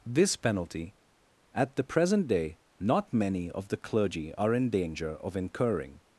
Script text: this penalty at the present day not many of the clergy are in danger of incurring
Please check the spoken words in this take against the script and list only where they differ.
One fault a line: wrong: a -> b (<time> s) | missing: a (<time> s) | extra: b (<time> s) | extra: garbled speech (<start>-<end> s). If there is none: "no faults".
no faults